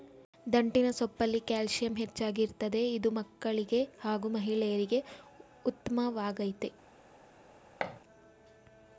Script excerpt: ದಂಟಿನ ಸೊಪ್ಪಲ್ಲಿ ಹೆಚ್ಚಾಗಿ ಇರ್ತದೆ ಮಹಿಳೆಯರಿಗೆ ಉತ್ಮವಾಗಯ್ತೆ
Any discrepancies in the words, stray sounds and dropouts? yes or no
yes